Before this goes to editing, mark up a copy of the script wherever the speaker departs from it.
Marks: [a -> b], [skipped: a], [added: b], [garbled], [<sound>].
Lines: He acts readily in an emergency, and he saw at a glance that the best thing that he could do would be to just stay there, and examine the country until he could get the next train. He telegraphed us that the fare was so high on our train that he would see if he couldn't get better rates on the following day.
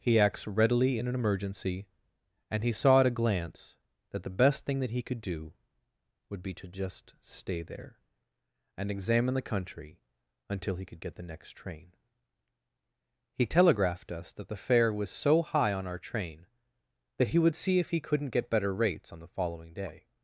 He acts readily in an emergency, and he saw at a glance that the best thing that he could do would be to just stay there, and examine the country until he could get the next train. He telegraphed us that the fare was so high on our train that he would see if he couldn't get better rates on the following day.